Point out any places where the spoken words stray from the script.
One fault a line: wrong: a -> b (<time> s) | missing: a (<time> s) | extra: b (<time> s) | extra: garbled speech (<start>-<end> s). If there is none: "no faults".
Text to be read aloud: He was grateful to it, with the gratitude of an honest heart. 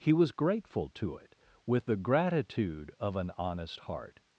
no faults